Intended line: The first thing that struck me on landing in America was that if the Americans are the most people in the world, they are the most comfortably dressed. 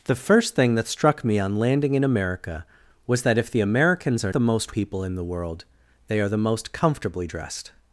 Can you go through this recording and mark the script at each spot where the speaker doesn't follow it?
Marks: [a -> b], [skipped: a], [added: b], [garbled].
The first thing that struck me on landing in America was that if the Americans are the most people in the world, they are the most comfortably dressed.